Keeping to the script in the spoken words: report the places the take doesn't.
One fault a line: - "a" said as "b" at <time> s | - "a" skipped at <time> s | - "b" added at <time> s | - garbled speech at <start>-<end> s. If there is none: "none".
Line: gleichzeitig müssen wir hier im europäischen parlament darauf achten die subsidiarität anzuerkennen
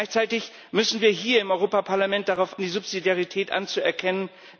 - "achten" skipped at 2.6 s